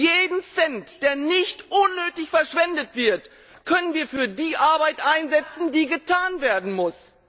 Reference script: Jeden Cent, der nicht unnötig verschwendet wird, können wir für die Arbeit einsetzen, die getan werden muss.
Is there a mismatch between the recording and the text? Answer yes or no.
no